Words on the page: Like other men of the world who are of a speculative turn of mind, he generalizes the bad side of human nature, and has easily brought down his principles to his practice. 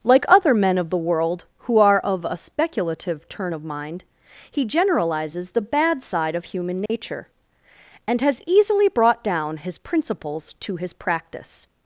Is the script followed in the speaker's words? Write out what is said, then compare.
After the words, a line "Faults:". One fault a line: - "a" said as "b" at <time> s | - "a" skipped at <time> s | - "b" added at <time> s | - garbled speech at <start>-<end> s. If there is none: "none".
Like other men of the world who are of a speculative turn of mind, he generalizes the bad side of human nature, and has easily brought down his principles to his practice.
Faults:
none